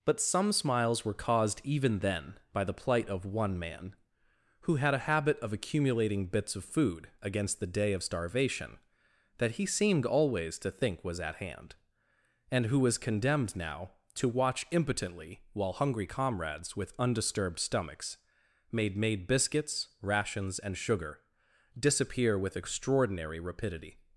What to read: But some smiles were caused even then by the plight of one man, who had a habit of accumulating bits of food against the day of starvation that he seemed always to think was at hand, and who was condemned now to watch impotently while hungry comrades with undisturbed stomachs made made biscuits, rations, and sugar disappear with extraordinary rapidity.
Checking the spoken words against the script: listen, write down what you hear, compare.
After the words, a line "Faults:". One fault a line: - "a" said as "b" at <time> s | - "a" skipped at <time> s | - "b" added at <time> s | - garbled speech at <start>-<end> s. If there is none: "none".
But some smiles were caused even then by the plight of one man, who had a habit of accumulating bits of food against the day of starvation that he seemed always to think was at hand, and who was condemned now to watch impotently while hungry comrades with undisturbed stomachs made made biscuits, rations, and sugar disappear with extraordinary rapidity.
Faults:
none